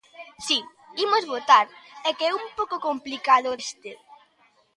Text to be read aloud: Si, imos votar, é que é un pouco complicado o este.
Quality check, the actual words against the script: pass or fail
pass